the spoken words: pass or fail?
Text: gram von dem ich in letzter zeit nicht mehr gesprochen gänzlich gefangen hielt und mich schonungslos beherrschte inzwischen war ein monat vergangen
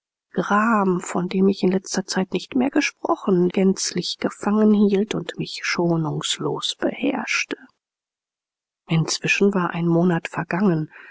pass